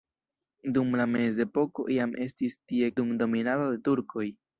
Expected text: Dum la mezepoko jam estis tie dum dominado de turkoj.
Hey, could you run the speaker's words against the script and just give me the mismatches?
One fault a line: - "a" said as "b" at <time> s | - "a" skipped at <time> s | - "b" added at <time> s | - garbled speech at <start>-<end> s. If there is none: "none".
none